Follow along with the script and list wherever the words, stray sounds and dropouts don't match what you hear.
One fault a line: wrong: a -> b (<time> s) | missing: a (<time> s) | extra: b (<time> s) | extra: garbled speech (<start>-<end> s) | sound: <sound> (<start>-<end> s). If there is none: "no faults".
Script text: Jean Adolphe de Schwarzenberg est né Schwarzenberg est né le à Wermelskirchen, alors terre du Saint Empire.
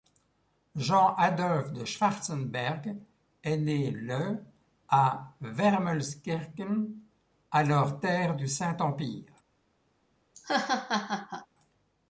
missing: Schwarzenberg est né (3.9 s)
sound: laugh (10.3-11.5 s)